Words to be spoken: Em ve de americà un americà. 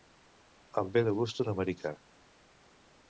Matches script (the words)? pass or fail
fail